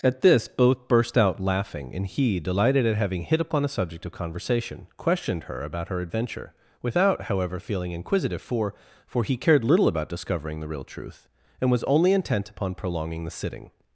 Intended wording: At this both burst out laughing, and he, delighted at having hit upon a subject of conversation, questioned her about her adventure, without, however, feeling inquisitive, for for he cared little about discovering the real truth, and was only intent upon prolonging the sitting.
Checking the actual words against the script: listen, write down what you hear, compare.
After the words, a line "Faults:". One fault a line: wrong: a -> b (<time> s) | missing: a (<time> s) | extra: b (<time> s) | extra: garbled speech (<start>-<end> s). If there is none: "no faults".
At this both burst out laughing, and he, delighted at having hit upon a subject of conversation, questioned her about her adventure, without, however, feeling inquisitive, for for he cared little about discovering the real truth, and was only intent upon prolonging the sitting.
Faults:
no faults